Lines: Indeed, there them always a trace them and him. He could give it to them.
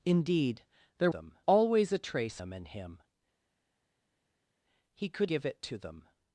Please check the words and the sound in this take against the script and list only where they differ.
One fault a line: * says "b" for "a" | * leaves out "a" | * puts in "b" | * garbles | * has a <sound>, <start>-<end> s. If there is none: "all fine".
all fine